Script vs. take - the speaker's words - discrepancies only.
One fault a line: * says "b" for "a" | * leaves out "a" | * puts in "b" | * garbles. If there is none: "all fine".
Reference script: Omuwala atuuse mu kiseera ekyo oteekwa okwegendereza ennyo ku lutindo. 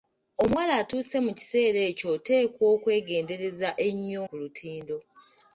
all fine